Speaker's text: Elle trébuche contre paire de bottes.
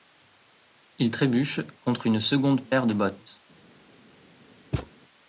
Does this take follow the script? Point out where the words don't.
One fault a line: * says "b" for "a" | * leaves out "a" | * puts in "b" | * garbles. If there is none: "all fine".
* says "Il" for "Elle"
* puts in "une seconde"